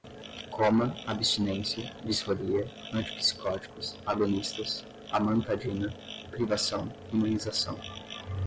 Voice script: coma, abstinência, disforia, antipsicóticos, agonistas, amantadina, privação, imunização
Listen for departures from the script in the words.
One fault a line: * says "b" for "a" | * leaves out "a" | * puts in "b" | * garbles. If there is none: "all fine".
all fine